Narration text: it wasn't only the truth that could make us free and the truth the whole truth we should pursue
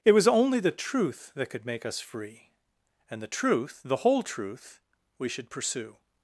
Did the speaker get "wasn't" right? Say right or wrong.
wrong